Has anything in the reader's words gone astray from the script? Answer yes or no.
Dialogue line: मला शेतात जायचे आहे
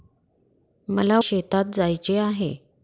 no